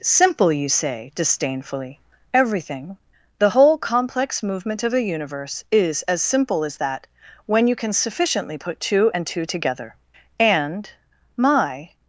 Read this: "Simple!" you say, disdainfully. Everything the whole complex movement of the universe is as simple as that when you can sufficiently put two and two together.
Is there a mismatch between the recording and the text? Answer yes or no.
yes